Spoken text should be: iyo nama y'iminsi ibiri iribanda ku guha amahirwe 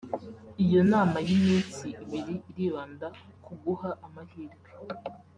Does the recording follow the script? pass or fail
pass